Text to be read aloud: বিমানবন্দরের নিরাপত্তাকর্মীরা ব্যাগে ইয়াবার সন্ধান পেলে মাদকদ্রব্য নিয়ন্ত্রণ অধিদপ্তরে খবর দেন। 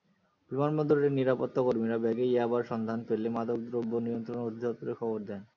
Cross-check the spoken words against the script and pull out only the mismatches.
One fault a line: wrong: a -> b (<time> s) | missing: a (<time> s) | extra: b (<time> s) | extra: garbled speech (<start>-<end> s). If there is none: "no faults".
no faults